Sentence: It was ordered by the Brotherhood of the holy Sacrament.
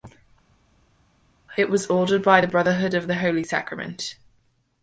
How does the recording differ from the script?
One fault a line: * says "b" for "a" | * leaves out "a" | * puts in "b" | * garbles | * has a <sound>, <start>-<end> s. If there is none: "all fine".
all fine